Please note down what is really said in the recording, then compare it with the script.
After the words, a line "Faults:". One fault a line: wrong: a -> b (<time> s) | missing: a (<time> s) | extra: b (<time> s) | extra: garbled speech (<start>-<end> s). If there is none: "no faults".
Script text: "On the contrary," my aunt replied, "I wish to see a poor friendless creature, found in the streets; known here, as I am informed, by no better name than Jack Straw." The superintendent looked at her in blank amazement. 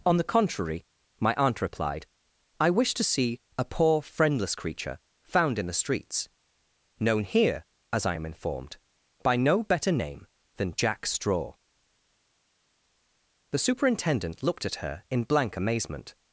"On the contrary," my aunt replied, "I wish to see a poor friendless creature, found in the streets; known here, as I am informed, by no better name than Jack Straw." The superintendent looked at her in blank amazement.
Faults:
no faults